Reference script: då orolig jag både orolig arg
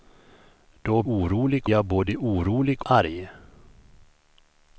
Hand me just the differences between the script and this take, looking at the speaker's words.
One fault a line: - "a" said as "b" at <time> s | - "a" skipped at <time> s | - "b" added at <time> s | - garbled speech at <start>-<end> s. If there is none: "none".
none